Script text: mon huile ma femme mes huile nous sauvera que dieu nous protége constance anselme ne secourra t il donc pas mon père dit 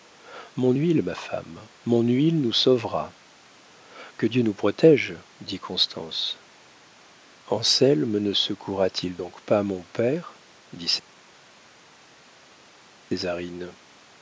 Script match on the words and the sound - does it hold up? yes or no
no